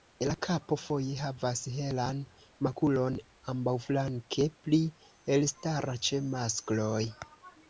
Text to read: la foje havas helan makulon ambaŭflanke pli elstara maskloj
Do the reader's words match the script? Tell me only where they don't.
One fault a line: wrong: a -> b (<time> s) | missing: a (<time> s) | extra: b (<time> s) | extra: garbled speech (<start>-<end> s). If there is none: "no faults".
extra: kapo (0.4 s)
extra: ĉe (6.1 s)